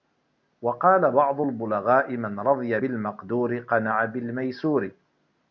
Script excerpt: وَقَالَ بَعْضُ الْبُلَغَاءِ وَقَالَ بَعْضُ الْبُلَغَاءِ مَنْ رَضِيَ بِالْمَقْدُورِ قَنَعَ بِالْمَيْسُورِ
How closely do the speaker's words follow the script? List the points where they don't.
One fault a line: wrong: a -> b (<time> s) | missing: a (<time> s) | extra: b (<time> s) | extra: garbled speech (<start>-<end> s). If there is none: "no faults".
missing: وَقَالَ بَعْضُ الْبُلَغَاءِ (2.2 s)